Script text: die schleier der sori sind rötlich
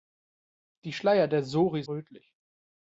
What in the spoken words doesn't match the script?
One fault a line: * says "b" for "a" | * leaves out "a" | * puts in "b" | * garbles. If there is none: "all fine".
* leaves out "sind"